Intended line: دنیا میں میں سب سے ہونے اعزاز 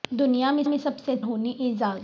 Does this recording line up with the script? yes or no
yes